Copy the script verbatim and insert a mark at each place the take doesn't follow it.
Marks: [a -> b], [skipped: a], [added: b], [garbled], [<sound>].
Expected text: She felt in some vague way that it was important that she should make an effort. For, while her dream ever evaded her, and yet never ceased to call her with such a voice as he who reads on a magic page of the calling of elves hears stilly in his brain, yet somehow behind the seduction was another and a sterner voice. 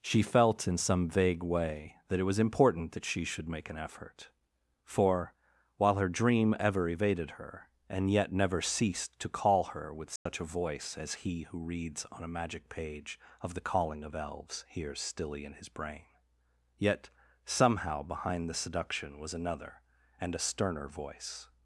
She felt in some vague way that it was important that she should make an effort. For, while her dream ever evaded her, and yet never ceased to call her with such [dropout] a voice as he who reads on a magic page of the calling of elves hears stilly in his brain, yet somehow behind the seduction was another and a sterner voice.